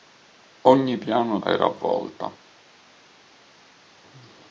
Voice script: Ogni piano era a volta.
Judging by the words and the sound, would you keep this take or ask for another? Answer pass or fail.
pass